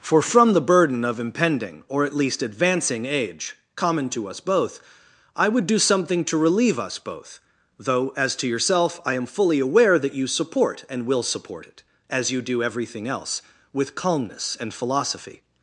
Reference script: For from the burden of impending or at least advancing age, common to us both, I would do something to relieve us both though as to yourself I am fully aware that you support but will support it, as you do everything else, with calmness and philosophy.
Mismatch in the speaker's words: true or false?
true